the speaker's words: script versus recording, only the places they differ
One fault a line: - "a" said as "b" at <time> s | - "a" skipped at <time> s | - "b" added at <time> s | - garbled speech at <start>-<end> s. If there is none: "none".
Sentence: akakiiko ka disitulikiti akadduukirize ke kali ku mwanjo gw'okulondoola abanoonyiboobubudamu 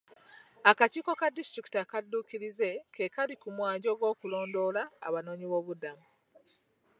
none